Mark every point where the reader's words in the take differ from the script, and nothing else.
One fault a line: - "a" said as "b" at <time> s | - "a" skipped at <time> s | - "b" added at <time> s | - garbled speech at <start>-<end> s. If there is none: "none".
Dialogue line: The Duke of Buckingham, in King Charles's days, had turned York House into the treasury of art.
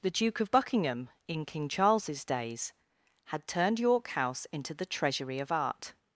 none